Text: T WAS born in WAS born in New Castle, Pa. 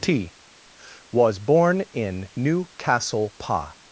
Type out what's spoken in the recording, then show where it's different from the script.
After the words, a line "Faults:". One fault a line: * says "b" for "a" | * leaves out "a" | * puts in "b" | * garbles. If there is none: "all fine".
T WAS born in New Castle, Pa.
Faults:
* leaves out "WAS born in"